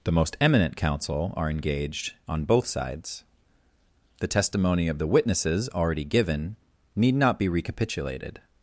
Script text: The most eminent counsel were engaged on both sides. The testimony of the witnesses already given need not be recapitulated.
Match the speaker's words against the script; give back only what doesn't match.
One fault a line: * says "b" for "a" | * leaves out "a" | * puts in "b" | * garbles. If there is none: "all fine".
* says "are" for "were"